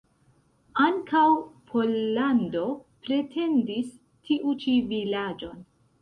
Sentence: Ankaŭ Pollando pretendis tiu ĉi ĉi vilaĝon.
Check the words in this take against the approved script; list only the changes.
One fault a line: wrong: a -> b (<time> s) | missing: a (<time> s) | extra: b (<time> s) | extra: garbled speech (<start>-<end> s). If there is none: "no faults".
missing: ĉi (4.8 s)